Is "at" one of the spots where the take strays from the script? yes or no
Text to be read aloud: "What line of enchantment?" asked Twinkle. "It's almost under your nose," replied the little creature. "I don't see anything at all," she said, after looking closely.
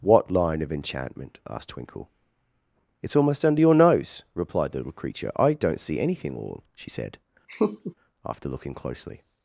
yes